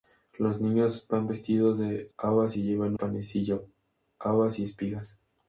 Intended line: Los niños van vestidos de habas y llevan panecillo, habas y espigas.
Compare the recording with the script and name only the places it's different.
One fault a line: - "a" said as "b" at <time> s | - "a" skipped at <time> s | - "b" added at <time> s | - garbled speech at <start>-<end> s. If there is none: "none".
none